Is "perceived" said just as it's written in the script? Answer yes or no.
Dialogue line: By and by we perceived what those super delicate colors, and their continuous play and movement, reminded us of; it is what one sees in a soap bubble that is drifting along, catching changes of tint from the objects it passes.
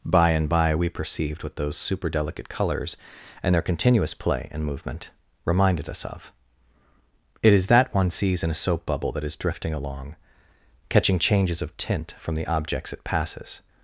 yes